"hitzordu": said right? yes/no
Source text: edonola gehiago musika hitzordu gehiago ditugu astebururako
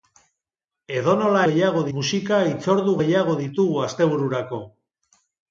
yes